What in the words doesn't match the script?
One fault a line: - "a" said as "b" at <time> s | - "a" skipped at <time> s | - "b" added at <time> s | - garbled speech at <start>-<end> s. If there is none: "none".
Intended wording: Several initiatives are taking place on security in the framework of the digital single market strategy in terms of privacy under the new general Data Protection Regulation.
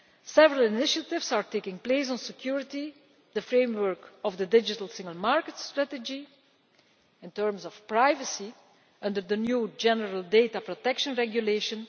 - "in" skipped at 2.9 s